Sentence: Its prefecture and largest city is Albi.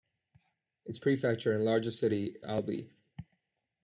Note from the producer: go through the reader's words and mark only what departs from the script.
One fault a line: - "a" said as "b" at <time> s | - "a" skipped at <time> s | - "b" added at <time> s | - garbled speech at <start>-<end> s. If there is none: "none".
- "is" skipped at 2.4 s